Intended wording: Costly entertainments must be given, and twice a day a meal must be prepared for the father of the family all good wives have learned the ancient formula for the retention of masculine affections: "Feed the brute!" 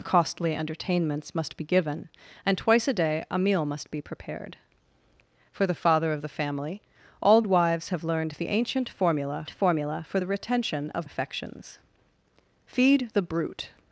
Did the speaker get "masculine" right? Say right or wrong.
wrong